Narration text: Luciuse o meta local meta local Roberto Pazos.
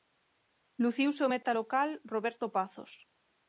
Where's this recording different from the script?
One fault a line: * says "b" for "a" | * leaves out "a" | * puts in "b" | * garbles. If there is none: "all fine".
* leaves out "meta local"